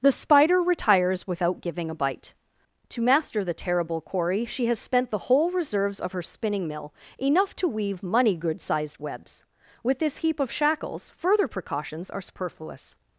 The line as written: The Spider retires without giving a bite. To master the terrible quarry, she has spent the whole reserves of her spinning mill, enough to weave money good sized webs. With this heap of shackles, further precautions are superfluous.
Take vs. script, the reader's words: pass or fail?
pass